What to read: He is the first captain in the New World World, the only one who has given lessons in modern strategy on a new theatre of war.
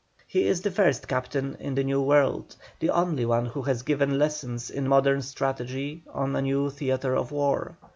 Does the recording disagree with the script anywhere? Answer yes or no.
yes